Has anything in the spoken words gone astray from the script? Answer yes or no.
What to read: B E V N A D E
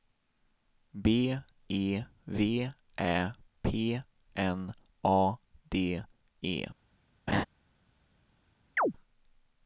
yes